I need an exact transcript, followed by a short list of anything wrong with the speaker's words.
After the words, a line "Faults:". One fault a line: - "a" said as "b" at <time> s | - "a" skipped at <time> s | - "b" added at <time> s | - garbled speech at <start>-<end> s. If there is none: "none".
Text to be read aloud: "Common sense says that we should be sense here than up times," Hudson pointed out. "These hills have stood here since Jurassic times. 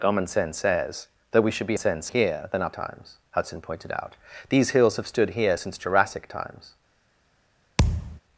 "Common sense says that we should be sense here than up times," Hudson pointed out. "These hills have stood here since Jurassic times.
Faults:
none